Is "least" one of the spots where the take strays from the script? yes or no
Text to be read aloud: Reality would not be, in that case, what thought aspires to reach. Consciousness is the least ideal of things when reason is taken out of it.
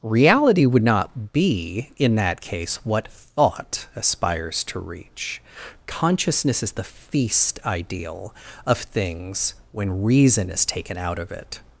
yes